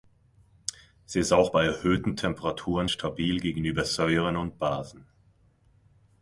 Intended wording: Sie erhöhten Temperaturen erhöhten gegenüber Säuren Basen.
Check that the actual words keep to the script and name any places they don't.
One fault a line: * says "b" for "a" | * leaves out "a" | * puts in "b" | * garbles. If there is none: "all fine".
* puts in "ist auch bei"
* says "stabil" for "erhöhten"
* puts in "und"